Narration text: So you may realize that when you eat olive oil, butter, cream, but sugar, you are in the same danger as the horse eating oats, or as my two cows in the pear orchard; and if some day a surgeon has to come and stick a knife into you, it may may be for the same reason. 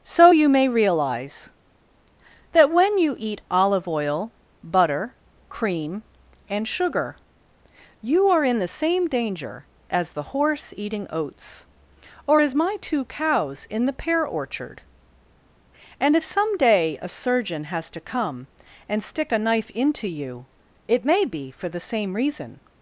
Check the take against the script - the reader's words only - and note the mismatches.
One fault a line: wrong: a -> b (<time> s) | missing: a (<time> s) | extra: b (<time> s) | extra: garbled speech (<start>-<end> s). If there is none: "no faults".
wrong: but -> and (6.5 s)
missing: may (21.2 s)